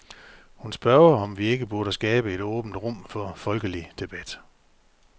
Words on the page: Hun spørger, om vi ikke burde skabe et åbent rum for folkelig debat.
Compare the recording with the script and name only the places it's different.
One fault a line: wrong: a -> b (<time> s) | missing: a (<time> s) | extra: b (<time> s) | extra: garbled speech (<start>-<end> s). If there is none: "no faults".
no faults